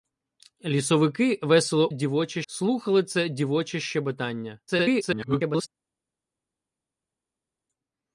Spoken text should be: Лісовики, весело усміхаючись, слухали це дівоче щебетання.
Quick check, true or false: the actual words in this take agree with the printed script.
false